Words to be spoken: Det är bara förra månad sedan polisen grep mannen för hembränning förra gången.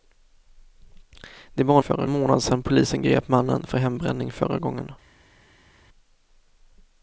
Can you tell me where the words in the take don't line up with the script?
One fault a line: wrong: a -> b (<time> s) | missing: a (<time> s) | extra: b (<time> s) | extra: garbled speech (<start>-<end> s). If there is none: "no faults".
no faults